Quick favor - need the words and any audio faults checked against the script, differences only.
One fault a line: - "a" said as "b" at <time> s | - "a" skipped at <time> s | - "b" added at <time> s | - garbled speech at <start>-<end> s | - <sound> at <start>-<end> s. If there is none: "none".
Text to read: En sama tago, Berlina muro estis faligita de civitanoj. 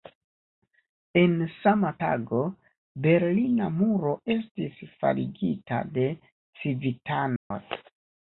- dropout at 7.4-7.5 s